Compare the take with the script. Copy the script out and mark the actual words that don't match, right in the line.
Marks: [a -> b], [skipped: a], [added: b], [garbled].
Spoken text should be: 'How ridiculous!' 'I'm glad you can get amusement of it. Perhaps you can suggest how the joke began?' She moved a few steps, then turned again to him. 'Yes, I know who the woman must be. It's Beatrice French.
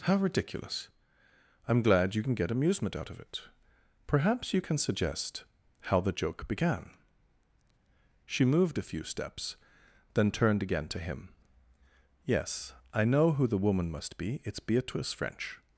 'How ridiculous!' 'I'm glad you can get amusement [added: out] of it. Perhaps you can suggest how the joke began?' She moved a few steps, then turned again to him. 'Yes, I know who the woman must be. It's Beatrice French.